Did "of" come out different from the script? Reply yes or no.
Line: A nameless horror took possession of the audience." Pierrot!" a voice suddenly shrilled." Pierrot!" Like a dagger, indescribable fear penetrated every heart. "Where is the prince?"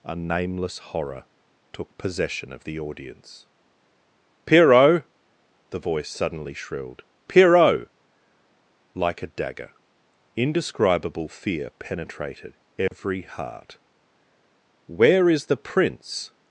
no